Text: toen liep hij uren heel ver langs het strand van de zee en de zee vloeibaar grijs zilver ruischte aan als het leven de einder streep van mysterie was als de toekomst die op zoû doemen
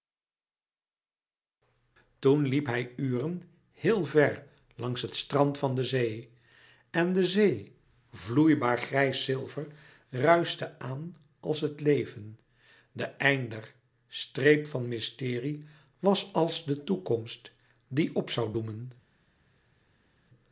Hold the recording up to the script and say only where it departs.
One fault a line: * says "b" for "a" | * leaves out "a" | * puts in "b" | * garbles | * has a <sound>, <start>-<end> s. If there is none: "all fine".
all fine